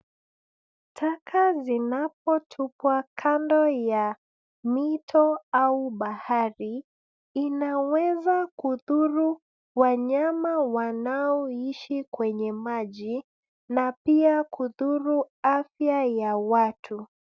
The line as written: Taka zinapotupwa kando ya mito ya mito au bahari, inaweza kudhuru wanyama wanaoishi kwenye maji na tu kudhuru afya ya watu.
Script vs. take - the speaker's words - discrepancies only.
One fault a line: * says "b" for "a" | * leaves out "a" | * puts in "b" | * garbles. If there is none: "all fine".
* leaves out "ya mito"
* says "pia" for "tu"